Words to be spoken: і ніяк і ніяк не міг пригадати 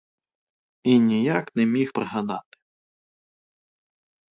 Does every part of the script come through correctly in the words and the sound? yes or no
no